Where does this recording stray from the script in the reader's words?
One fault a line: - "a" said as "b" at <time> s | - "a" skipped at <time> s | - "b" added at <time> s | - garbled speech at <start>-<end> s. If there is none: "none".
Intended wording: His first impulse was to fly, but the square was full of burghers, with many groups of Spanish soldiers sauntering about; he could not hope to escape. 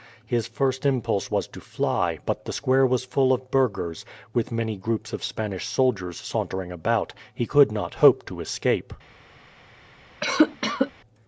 none